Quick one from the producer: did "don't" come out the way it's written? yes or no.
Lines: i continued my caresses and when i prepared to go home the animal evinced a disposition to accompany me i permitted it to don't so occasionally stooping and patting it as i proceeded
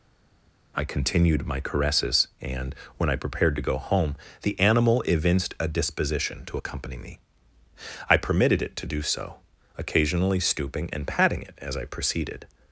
no